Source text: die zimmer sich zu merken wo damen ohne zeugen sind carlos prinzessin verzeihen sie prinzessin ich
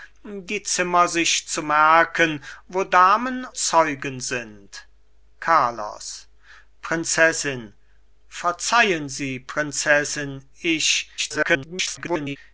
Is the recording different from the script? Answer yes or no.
yes